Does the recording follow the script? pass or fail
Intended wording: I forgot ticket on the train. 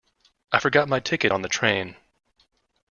fail